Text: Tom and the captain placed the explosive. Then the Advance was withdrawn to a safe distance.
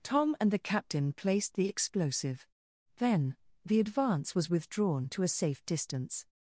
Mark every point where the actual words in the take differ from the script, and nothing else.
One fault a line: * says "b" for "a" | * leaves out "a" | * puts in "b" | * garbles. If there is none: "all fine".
all fine